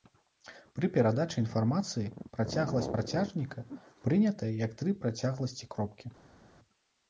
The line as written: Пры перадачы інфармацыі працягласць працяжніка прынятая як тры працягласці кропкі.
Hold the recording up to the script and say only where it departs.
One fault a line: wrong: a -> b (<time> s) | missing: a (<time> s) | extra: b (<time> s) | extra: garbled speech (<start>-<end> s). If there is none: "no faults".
no faults